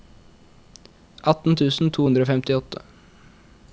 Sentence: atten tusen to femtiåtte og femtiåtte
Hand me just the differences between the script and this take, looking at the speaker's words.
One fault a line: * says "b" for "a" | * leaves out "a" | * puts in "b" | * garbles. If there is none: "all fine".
* says "hundre" for "femtiåtte"